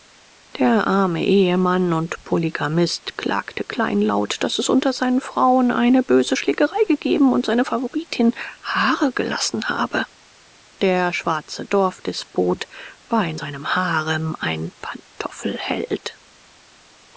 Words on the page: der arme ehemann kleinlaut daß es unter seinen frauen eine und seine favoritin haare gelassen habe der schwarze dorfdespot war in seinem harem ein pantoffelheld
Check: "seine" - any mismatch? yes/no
no